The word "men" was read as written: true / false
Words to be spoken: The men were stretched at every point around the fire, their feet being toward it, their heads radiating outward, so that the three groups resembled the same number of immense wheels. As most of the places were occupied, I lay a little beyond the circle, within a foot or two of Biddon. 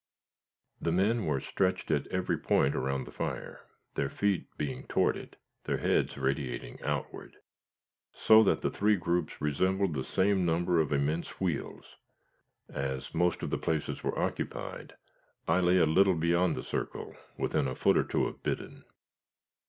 true